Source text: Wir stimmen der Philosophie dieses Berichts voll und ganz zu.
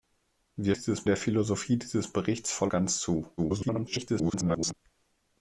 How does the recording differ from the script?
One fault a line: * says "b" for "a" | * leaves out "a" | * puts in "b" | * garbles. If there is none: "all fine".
* says "dieses" for "stimmen"
* leaves out "und"
* garbles